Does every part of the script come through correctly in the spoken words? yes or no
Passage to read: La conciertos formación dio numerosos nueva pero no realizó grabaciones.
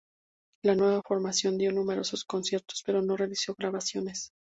no